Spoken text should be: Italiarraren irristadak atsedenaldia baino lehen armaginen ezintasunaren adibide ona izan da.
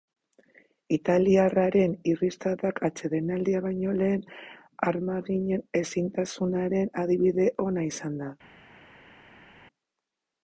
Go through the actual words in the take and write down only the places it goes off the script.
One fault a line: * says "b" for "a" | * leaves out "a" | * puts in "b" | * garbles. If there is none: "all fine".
all fine